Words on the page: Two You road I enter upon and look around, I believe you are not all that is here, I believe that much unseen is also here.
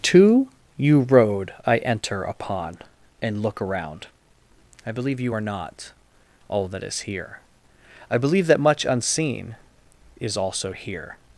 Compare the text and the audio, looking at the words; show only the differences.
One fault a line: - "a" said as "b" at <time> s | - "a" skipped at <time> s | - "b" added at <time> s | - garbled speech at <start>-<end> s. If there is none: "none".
none